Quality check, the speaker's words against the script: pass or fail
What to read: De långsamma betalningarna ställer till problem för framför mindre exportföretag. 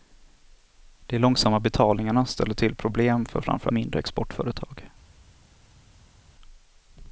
pass